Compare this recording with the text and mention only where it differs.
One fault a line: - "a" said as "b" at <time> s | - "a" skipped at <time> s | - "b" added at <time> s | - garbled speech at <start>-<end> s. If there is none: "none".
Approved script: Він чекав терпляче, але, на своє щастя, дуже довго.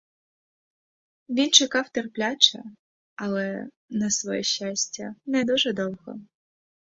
- "не" added at 5.2 s